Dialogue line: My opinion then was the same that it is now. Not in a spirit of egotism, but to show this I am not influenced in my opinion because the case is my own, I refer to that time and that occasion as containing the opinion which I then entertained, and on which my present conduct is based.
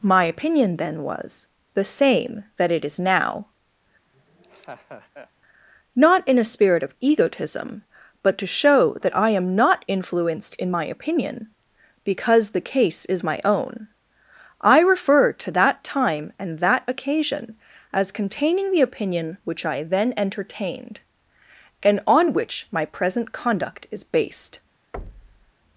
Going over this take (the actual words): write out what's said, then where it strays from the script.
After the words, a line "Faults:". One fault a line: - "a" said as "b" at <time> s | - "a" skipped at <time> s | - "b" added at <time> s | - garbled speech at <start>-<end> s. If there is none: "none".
My opinion then was the same that it is now. Not in a spirit of egotism, but to show that I am not influenced in my opinion because the case is my own, I refer to that time and that occasion as containing the opinion which I then entertained, and on which my present conduct is based.
Faults:
- "this" said as "that" at 9.0 s